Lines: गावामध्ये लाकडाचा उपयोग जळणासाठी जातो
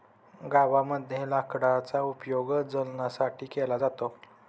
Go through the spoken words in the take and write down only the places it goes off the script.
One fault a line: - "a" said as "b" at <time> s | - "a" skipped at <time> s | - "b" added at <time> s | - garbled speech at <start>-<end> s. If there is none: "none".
- "केला" added at 3.5 s